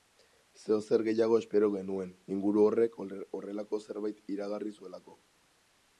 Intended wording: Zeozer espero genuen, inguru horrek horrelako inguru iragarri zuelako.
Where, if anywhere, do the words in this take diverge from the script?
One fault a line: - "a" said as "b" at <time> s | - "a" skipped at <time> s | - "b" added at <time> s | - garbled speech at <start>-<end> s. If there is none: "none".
- "gehiago" added at 1.1 s
- "inguru" said as "zerbait" at 3.9 s